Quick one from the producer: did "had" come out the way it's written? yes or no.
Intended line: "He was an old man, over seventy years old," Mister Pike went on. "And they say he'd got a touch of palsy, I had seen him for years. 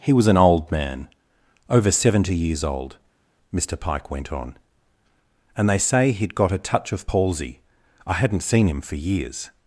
no